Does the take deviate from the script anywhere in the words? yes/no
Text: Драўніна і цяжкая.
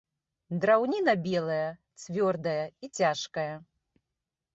yes